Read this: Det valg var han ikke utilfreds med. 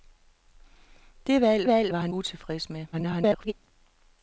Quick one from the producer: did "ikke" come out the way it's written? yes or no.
no